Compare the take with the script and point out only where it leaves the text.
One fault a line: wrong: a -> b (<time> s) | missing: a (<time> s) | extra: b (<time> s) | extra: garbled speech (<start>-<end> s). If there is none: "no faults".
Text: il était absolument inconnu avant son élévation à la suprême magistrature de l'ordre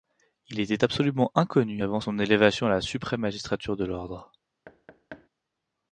no faults